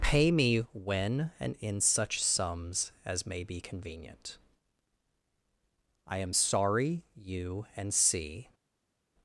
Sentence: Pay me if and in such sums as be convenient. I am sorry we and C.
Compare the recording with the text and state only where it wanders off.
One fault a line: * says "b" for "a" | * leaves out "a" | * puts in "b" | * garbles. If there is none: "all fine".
* says "when" for "if"
* puts in "may"
* says "you" for "we"